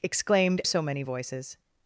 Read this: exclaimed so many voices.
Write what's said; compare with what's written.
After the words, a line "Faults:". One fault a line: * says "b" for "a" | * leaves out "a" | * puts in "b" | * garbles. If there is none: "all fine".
exclaimed so many voices.
Faults:
all fine